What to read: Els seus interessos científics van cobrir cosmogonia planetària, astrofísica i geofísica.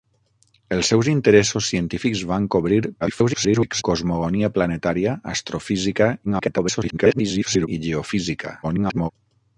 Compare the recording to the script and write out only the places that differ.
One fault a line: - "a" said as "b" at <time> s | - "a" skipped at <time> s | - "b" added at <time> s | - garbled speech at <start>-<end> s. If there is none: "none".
- garbled speech at 3.0-3.8 s
- garbled speech at 6.2-7.7 s
- garbled speech at 8.6-9.1 s